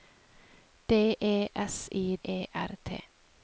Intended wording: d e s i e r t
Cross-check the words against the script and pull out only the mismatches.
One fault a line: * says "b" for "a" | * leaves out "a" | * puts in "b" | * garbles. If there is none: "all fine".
all fine